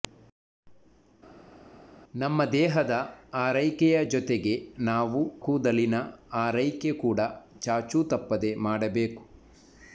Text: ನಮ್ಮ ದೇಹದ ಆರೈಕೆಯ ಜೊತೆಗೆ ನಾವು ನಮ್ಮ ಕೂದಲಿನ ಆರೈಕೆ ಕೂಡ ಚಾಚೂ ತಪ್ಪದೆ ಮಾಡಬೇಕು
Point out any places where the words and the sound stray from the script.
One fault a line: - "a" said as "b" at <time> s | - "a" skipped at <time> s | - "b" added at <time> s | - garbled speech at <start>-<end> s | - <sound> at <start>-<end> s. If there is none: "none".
- "ನಮ್ಮ" skipped at 5.2 s